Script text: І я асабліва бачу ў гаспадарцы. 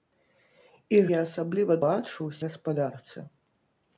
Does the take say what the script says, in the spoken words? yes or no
yes